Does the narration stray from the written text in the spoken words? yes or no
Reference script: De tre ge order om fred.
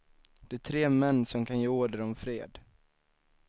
yes